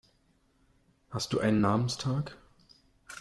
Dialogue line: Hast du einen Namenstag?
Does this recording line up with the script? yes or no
yes